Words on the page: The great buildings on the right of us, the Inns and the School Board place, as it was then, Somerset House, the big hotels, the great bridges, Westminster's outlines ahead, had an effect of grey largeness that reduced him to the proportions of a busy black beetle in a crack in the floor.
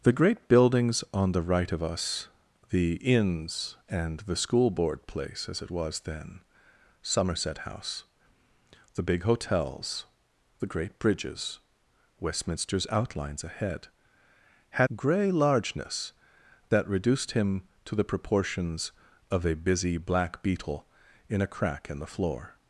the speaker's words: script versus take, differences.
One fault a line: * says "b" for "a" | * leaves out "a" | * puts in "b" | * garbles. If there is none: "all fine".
* leaves out "an effect of"